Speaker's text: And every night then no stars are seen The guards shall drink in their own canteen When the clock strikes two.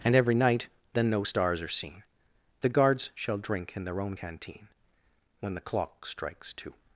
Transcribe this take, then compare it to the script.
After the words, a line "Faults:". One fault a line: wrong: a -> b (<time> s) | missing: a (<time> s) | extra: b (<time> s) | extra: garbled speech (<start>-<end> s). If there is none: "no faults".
And every night then no stars are seen The guards shall drink in their own canteen When the clock strikes two.
Faults:
no faults